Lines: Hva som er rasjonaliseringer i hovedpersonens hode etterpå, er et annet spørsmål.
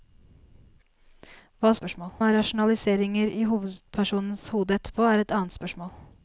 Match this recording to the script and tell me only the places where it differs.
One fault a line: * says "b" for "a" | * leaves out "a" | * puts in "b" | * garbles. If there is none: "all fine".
* says "spørsmål" for "som"